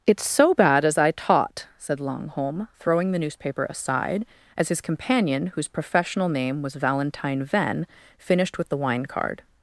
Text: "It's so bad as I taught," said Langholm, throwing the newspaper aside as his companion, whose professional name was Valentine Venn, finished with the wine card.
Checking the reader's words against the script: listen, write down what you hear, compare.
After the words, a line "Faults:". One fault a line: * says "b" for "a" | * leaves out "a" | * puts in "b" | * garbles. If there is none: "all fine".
"It's so bad as I taught," said Langholm, throwing the newspaper aside as his companion, whose professional name was Valentine Venn, finished with the wine card.
Faults:
all fine